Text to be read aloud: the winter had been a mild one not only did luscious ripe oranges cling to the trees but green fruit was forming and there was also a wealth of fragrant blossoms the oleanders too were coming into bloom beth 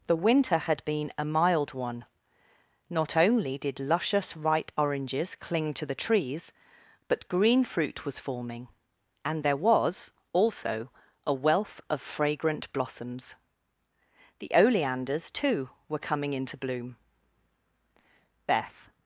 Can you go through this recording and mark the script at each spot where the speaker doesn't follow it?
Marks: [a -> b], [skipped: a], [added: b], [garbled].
the winter had been a mild one not only did luscious ripe oranges cling to the trees but green fruit was forming and there was also a wealth of fragrant blossoms the oleanders too were coming into bloom beth